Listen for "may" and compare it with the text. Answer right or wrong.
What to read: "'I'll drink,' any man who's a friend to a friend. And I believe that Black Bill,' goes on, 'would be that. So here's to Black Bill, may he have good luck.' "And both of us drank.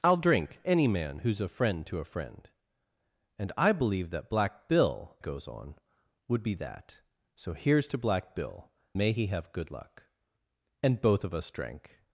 right